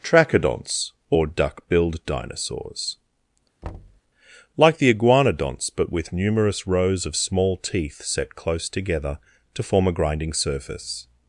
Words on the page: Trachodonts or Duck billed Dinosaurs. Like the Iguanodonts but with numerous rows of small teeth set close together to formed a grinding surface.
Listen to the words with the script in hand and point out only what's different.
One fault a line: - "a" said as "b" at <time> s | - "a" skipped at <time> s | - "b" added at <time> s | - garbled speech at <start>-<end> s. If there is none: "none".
- "formed" said as "form" at 9.6 s